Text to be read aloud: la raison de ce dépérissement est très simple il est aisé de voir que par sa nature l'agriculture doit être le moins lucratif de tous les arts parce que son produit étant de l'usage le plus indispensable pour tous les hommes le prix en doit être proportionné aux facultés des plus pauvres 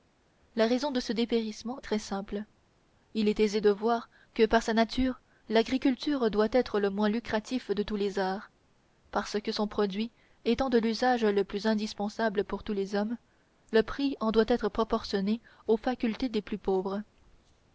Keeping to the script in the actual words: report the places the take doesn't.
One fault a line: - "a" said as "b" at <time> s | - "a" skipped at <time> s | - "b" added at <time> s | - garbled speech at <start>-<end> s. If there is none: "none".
- "est" skipped at 1.8 s